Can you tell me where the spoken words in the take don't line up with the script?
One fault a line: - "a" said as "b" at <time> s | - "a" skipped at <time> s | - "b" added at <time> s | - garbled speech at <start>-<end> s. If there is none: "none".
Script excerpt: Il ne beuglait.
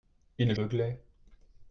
none